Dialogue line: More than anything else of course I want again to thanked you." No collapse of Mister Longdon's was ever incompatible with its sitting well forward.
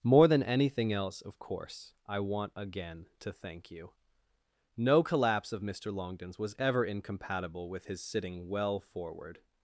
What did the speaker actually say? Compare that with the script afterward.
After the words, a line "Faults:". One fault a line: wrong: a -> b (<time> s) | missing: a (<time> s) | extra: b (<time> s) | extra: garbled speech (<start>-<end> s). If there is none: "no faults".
More than anything else of course I want again to thank you." No collapse of Mister Longdon's was ever incompatible with his sitting well forward.
Faults:
wrong: thanked -> thank (3.3 s)
wrong: its -> his (7.9 s)